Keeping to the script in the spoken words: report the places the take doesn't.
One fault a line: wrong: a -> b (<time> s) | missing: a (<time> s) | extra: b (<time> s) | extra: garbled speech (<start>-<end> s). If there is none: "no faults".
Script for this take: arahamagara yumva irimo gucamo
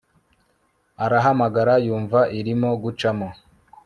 no faults